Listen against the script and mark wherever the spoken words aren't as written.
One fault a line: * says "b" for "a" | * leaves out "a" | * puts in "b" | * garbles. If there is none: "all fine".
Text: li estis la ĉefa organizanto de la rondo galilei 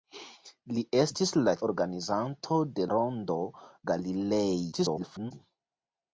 * leaves out "ĉefa"
* leaves out "la"
* garbles